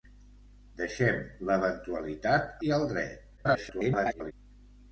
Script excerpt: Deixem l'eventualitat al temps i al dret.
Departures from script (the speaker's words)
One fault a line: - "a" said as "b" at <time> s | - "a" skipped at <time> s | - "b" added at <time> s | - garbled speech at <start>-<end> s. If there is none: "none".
- "al temps" skipped at 2.5 s
- garbled speech at 3.4-4.3 s